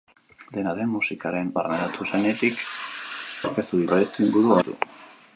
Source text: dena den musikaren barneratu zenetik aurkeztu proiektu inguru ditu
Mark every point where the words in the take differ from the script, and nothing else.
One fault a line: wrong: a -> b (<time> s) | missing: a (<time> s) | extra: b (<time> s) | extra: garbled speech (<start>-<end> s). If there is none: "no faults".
no faults